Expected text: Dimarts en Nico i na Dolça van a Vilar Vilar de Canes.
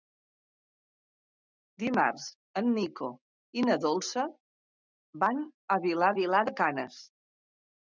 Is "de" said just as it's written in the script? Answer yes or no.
yes